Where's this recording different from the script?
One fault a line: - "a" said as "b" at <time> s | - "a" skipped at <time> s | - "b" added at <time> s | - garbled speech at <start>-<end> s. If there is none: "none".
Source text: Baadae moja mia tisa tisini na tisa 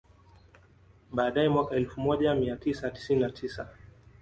- "mwaka elfu" added at 1.5 s